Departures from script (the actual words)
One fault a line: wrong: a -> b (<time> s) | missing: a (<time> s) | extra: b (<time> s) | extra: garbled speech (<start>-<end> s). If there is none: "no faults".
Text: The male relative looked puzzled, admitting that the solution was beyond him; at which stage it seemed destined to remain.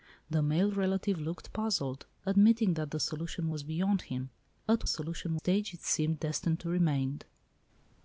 wrong: which -> solution (4.9 s)